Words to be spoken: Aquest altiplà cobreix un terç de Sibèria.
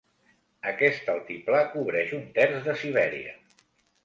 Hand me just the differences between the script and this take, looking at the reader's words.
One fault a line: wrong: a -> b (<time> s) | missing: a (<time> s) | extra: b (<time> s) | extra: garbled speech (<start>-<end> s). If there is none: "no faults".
no faults